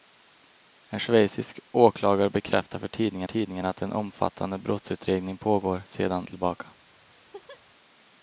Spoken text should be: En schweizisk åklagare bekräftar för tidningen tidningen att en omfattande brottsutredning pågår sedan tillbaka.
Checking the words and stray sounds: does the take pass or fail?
fail